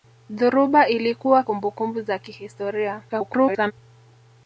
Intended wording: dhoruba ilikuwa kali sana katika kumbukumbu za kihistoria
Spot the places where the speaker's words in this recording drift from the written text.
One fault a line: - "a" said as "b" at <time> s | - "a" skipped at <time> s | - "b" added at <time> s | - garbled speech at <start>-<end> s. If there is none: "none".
- "kali sana katika" skipped at 1.4 s
- garbled speech at 3.1-3.7 s